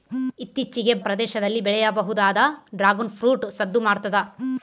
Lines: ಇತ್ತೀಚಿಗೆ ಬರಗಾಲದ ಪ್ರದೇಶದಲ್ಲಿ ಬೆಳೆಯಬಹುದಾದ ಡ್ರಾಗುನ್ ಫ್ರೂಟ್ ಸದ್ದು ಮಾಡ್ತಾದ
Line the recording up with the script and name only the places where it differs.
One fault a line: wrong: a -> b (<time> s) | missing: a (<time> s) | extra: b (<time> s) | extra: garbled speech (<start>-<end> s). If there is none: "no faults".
missing: ಬರಗಾಲದ (0.9 s)